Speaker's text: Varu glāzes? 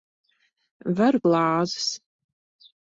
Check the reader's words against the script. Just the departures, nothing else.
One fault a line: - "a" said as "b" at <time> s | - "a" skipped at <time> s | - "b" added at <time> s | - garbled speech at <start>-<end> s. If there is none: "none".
none